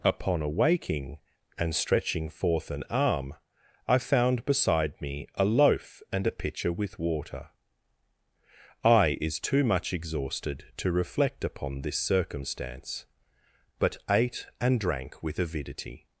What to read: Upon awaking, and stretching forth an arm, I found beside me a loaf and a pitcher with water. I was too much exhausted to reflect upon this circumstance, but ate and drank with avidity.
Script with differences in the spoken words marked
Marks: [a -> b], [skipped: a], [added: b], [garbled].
Upon awaking, and stretching forth an arm, I found beside me a loaf and a pitcher with water. I [was -> is] too much exhausted to reflect upon this circumstance, but ate and drank with avidity.